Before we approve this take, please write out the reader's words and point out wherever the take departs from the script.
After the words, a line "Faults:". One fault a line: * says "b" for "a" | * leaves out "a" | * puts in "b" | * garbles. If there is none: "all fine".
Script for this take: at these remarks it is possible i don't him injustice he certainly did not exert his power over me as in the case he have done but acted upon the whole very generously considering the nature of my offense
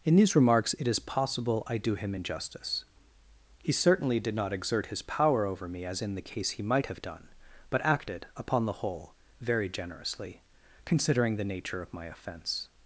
in these remarks it is possible i do him injustice he certainly did not exert his power over me as in the case he might have done but acted upon the whole very generously considering the nature of my offense
Faults:
* says "in" for "at"
* says "do" for "don't"
* puts in "might"